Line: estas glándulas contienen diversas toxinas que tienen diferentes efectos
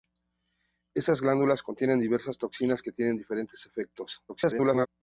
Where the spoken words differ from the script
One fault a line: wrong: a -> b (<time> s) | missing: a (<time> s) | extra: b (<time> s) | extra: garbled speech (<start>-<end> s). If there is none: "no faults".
extra: garbled speech (4.3-4.9 s)